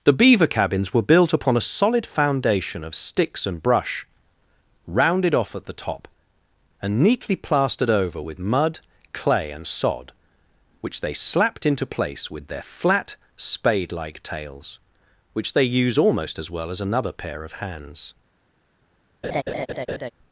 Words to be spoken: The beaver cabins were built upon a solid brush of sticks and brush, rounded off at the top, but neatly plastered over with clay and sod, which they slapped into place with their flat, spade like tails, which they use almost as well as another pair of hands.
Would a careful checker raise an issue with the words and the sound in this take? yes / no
yes